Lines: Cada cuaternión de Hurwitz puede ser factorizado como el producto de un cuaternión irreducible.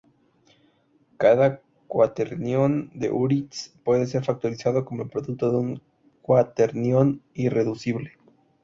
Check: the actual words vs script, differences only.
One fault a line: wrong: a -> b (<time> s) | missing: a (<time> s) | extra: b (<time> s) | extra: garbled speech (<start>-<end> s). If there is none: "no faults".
no faults